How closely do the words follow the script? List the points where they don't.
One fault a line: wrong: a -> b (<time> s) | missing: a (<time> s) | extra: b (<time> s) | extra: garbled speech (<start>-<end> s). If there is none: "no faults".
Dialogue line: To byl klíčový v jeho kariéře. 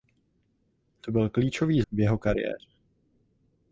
no faults